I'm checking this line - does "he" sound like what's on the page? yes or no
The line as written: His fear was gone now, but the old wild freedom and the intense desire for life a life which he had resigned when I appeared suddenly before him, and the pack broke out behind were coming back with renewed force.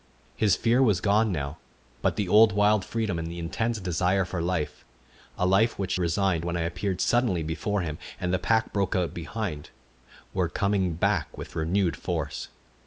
no